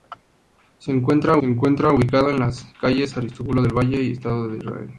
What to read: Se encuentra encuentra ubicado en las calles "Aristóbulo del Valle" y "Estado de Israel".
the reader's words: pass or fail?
pass